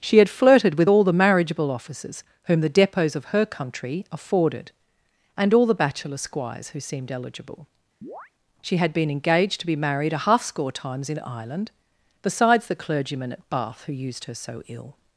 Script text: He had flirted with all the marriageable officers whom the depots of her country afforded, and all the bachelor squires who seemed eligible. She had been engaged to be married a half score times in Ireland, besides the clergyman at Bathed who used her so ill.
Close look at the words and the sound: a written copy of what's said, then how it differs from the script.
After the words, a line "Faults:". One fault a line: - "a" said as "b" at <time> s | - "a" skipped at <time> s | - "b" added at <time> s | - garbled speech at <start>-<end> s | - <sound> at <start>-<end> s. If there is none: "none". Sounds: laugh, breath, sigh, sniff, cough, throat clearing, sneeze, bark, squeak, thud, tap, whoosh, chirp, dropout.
She had flirted with all the marriageable officers whom the depots of her country afforded, and all the bachelor squires who seemed eligible. She had been engaged to be married a half score times in Ireland, besides the clergyman at Bath who used her so ill.
Faults:
- "He" said as "She" at 0.0 s
- chirp at 8.0-8.3 s
- "Bathed" said as "Bath" at 13.5 s